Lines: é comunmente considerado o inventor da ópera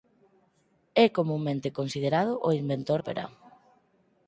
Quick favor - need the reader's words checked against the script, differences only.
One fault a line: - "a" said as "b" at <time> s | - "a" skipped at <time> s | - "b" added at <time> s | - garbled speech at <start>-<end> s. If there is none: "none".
- "da" skipped at 3.0 s